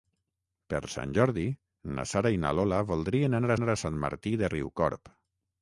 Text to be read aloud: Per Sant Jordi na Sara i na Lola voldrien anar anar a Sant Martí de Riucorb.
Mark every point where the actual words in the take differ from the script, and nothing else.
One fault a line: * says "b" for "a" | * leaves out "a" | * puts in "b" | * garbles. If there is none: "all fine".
all fine